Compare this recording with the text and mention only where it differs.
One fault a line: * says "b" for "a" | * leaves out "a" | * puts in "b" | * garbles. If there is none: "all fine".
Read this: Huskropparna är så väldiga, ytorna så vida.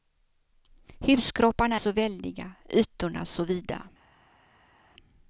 * leaves out "är"